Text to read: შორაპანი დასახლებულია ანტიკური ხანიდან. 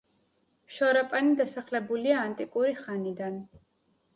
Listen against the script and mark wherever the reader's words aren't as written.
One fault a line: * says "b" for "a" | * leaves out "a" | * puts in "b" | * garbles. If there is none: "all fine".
all fine